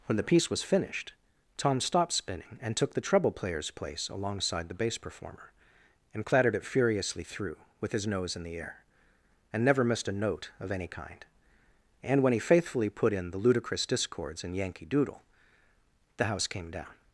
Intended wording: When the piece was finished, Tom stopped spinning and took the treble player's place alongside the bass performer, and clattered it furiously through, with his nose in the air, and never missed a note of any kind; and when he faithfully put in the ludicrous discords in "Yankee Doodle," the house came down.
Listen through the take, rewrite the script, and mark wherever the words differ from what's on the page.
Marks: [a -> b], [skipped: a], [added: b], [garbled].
When the piece was finished, Tom stopped spinning and took the treble player's place alongside the bass performer, and clattered it furiously through, with his nose in the air, and never missed a note of any kind; and when he faithfully put in the ludicrous discords in "Yankee Doodle," the house came down.